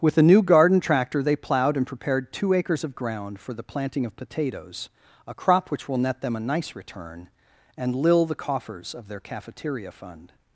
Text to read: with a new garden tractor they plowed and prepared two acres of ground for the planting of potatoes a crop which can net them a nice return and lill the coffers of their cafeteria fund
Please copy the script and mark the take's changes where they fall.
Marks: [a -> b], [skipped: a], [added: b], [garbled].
with a new garden tractor they plowed and prepared two acres of ground for the planting of potatoes a crop which [can -> will] net them a nice return and lill the coffers of their cafeteria fund